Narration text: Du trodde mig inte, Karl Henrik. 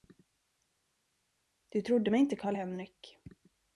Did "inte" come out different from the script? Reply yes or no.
no